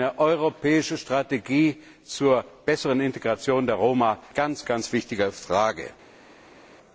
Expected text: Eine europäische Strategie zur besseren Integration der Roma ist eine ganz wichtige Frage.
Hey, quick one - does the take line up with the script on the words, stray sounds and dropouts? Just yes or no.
no